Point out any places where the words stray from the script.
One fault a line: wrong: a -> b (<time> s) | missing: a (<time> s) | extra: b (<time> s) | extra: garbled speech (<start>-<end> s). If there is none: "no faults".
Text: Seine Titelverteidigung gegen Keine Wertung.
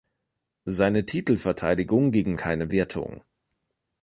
no faults